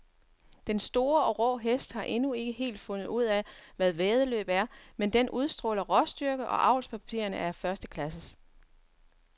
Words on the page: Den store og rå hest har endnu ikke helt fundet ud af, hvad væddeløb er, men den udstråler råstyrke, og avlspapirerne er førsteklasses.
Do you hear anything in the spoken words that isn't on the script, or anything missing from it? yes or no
no